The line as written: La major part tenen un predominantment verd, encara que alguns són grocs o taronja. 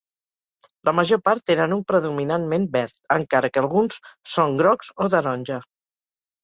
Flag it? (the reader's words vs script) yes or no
no